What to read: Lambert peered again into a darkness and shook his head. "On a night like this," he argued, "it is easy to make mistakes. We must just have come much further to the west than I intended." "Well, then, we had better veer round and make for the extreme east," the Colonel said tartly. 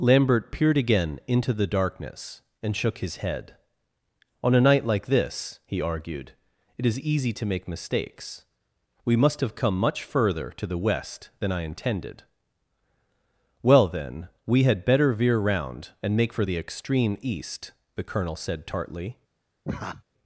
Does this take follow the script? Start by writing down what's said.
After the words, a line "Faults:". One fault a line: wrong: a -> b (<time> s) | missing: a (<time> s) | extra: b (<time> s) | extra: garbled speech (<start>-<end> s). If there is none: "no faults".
Lambert peered again into the darkness and shook his head. "On a night like this," he argued, "it is easy to make mistakes. We must have come much further to the west than I intended." "Well, then, we had better veer round and make for the extreme east," the Colonel said tartly.
Faults:
wrong: a -> the (1.5 s)
missing: just (9.4 s)